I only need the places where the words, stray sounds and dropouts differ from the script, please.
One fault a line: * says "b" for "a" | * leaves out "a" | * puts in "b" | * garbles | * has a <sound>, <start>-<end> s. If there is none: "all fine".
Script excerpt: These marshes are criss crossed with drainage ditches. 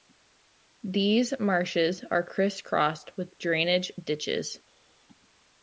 all fine